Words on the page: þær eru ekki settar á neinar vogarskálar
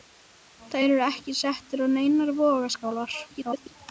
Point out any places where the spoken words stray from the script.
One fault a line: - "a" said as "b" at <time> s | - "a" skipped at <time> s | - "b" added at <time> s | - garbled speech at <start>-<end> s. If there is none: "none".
- garbled speech at 3.3-3.7 s